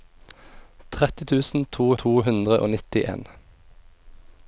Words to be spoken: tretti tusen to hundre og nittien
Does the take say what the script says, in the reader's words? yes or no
no